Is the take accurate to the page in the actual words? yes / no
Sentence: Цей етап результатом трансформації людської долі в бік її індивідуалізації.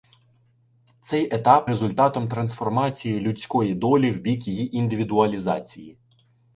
yes